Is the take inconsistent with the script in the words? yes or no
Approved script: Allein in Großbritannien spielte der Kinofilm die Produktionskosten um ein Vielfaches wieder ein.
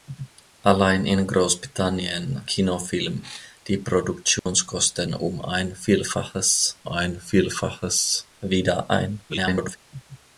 yes